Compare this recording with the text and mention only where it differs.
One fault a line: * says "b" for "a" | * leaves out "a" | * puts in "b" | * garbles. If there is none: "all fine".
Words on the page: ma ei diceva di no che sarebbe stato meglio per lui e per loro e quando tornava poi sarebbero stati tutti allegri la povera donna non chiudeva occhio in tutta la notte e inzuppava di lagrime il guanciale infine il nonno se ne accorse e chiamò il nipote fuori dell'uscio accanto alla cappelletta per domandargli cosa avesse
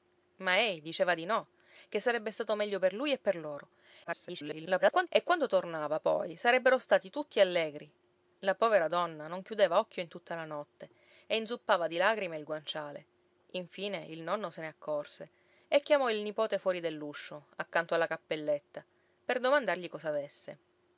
* garbles